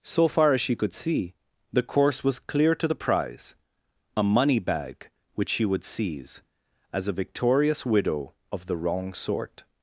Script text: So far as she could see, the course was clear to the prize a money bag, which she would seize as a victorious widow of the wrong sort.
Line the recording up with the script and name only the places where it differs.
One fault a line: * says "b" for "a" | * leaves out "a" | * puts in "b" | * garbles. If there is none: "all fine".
all fine